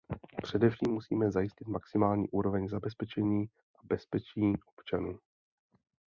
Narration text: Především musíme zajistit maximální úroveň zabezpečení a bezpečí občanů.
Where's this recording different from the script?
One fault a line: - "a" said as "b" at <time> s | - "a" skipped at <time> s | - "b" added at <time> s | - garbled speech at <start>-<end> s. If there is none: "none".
none